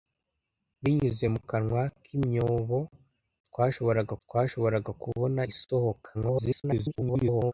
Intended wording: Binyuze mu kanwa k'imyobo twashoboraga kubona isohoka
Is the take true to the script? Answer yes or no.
no